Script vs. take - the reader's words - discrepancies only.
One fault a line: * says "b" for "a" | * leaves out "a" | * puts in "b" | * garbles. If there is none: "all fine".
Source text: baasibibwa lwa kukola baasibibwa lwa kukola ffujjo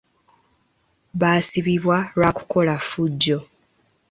* leaves out "baasibibwa lwa kukola"